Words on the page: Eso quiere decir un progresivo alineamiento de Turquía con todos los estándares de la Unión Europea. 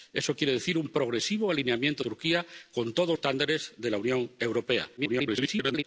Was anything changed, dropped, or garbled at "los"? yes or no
yes